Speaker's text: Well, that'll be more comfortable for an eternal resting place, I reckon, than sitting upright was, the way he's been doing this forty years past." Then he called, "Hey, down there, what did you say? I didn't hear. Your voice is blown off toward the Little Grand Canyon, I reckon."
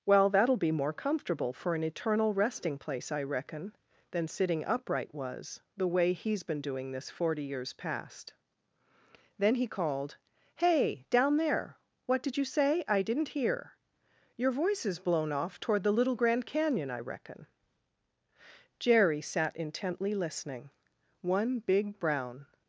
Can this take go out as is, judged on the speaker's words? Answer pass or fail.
fail